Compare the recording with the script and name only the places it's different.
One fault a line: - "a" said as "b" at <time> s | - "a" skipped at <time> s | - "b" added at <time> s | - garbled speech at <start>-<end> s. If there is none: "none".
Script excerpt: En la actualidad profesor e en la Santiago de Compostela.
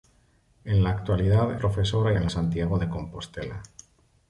none